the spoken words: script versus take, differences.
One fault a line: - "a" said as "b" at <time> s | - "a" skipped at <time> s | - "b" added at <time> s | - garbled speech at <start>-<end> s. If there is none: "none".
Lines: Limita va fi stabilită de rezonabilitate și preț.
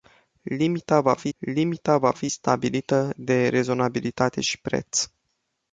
- "limita va fi" added at 1.4 s